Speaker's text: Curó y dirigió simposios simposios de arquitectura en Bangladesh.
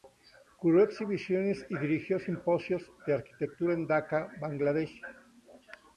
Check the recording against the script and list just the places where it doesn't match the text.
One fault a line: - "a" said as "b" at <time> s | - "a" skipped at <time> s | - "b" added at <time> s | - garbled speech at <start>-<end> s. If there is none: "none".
- "exhibiciones" added at 0.8 s
- "simposios" skipped at 2.9 s
- "Daca" added at 3.9 s